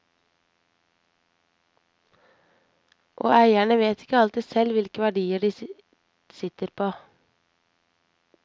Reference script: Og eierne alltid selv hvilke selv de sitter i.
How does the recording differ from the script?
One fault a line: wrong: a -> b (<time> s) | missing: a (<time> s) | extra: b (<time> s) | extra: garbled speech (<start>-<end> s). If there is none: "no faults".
extra: vet ikke (3.8 s)
wrong: selv -> verdier (5.0 s)
wrong: i -> på (6.7 s)